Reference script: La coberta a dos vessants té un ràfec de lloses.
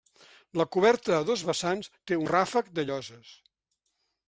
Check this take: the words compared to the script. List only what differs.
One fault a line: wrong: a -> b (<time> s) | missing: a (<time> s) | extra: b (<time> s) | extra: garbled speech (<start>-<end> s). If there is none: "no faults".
missing: un (2.2 s)